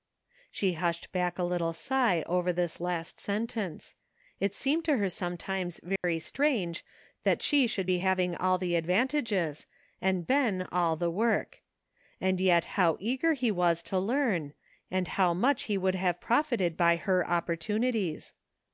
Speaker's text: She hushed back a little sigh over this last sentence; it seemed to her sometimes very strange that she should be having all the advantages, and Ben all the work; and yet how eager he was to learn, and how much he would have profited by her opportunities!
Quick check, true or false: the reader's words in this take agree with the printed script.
true